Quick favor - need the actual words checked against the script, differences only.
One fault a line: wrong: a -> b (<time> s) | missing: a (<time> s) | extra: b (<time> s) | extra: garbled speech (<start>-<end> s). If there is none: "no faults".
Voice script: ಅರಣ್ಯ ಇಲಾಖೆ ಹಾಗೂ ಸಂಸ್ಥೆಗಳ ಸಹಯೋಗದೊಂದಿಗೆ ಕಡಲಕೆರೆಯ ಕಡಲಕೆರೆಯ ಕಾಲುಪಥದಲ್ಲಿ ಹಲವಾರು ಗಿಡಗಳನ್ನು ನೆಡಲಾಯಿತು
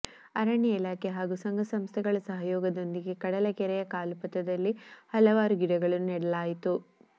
extra: ಸಂಘ (1.4 s)
missing: ಕಡಲಕೆರೆಯ (3.8 s)